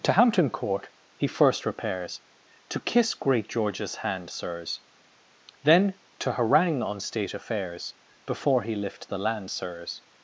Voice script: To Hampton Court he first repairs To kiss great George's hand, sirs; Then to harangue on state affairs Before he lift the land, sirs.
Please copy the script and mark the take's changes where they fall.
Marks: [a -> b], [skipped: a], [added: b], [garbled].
To Hampton Court he first repairs To kiss great George's hand, sirs; Then to harangue on state affairs Before he lift the land, sirs.